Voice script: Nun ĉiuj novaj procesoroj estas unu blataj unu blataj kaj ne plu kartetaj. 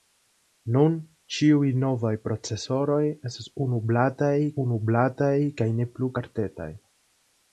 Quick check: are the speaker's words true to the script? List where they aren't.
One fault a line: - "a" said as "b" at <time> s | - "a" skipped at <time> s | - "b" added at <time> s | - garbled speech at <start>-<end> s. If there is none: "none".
none